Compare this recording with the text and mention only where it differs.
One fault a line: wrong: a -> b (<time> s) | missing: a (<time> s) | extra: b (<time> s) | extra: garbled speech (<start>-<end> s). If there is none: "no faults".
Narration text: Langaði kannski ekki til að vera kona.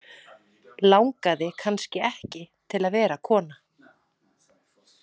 no faults